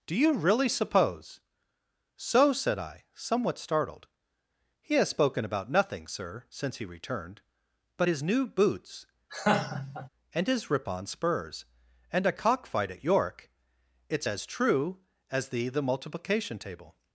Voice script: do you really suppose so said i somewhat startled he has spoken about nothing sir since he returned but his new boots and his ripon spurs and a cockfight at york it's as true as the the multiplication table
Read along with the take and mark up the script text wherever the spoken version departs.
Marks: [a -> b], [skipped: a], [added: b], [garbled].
do you really suppose so said i somewhat startled he has spoken about nothing sir since he returned but his new boots and his ripon spurs and a cockfight at york it's as true as the the multiplication table